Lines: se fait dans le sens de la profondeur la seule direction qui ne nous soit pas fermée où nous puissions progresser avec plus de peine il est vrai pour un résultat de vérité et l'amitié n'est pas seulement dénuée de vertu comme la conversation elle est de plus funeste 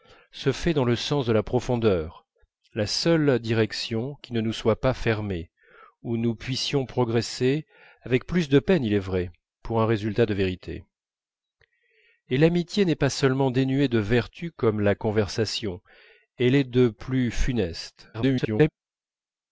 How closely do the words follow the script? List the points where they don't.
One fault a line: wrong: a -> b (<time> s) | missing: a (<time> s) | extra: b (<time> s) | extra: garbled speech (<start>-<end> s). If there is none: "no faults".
extra: garbled speech (18.1-18.7 s)